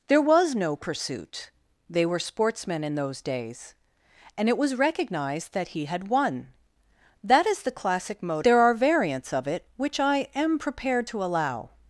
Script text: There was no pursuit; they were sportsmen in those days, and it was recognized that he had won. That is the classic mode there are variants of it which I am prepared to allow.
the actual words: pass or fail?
pass